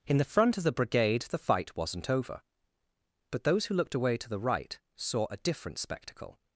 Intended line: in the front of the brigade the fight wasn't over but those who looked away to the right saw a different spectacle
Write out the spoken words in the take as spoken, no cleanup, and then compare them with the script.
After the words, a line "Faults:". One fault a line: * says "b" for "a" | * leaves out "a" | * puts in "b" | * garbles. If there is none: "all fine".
in the front of the brigade the fight wasn't over but those who looked away to the right saw a different spectacle
Faults:
all fine